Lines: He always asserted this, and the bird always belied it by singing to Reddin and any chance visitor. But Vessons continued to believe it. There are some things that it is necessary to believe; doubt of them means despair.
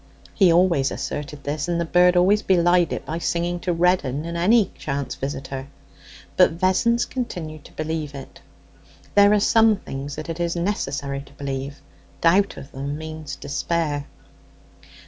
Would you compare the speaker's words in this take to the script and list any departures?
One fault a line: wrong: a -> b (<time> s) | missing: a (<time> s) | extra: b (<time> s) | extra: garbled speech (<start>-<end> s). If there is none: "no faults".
no faults